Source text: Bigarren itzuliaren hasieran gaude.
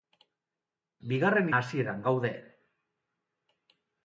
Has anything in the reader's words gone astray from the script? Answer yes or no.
yes